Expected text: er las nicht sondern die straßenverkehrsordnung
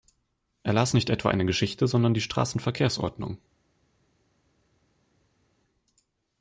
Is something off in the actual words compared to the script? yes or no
yes